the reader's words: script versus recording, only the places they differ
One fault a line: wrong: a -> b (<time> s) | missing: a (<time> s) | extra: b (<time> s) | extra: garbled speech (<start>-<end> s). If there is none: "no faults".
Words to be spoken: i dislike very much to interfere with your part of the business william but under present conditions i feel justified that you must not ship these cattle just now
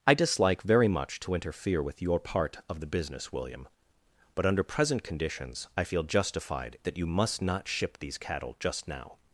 no faults